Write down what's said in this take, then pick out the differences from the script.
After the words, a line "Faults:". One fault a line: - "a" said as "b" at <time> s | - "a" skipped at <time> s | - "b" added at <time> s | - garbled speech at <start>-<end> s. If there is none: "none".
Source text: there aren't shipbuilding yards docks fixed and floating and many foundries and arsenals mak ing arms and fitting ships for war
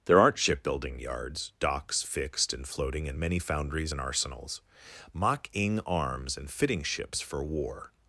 there aren't shipbuilding yards docks fixed and floating and many foundries and arsenals mak ing arms and fitting ships for war
Faults:
none